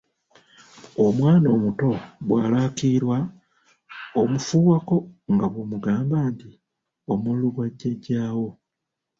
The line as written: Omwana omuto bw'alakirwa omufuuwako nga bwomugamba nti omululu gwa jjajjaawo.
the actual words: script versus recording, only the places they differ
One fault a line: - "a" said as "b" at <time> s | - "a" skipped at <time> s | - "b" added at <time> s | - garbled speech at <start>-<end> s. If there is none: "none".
none